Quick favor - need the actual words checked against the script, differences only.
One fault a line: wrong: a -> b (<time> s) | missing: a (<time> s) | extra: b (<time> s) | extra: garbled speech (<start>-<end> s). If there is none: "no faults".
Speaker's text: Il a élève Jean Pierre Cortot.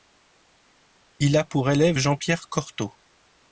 extra: pour (1.4 s)